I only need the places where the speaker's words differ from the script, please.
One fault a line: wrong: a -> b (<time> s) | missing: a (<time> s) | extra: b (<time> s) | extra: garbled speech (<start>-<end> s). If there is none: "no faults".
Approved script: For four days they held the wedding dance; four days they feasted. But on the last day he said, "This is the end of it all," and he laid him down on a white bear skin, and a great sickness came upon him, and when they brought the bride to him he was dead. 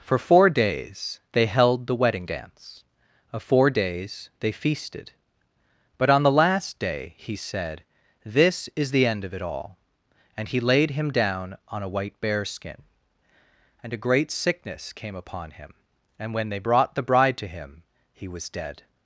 extra: of (3.3 s)